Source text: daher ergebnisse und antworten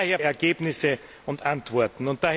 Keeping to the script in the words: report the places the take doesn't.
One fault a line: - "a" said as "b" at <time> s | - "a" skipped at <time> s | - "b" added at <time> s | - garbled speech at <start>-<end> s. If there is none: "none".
none